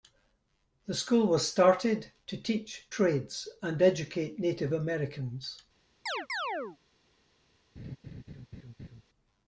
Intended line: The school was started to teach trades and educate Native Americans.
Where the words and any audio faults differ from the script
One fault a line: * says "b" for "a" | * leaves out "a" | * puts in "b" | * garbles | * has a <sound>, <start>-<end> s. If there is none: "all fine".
* has a chirp, 6.1-6.8 s
* has a laugh, 7.8-9.0 s